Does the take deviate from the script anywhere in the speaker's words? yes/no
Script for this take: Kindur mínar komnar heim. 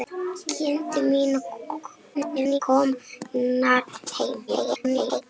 yes